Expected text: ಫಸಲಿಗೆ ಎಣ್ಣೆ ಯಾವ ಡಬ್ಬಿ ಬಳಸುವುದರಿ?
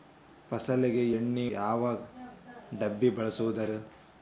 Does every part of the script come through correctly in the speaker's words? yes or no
yes